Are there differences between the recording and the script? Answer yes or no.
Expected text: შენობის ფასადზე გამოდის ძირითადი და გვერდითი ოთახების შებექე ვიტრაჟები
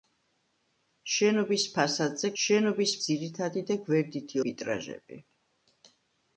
yes